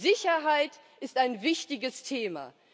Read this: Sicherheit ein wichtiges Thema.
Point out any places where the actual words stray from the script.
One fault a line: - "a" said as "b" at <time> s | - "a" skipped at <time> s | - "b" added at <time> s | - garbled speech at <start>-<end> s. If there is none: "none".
- "ist" added at 1.0 s